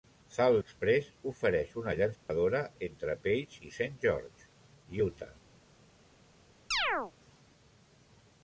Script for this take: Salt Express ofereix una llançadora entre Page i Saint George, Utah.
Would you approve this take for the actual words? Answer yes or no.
yes